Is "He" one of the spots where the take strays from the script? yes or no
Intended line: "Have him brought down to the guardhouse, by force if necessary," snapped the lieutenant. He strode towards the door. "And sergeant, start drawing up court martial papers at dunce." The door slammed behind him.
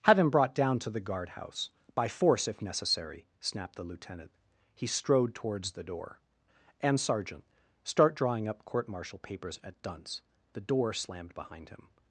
no